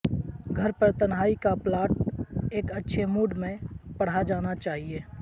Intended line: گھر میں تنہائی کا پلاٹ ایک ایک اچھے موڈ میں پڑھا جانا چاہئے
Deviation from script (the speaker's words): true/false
true